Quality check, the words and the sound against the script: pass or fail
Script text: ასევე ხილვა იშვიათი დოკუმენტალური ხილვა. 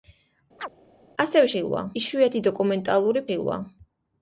fail